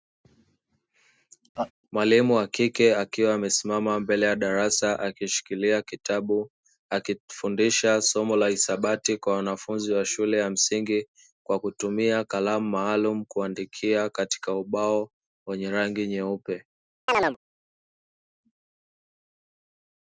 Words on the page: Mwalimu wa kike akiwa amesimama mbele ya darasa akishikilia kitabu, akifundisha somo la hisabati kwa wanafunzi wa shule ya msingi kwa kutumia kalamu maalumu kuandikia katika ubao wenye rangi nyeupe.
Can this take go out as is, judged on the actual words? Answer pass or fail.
pass